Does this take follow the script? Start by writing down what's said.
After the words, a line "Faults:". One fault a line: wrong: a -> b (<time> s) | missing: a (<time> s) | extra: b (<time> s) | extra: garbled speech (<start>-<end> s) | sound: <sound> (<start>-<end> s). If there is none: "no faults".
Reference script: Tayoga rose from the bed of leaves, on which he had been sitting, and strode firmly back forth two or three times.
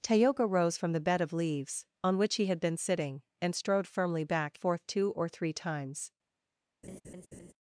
Tayoga rose from the bed of leaves, on which he had been sitting, and strode firmly back forth two or three times.
Faults:
sound: laugh (6.8-7.5 s)